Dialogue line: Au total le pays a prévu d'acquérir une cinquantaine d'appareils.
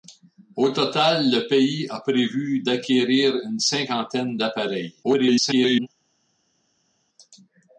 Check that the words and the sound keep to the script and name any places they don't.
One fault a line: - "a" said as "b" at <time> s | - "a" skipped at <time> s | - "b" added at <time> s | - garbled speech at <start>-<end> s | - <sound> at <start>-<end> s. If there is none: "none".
- garbled speech at 5.0-5.9 s